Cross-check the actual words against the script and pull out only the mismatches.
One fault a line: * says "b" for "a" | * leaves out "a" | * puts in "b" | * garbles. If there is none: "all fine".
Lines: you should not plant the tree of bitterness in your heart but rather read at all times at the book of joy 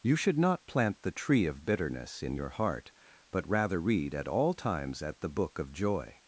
all fine